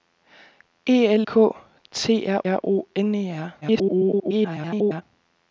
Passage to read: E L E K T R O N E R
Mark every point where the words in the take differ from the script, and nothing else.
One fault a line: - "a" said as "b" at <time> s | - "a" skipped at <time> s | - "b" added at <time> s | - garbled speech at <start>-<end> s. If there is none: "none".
- "E" skipped at 1.3 s
- "R" added at 2.5 s
- garbled speech at 3.6-5.0 s